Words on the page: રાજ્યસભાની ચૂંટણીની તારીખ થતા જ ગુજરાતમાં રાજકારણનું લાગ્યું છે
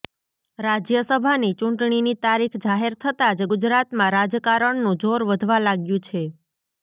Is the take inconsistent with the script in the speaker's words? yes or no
yes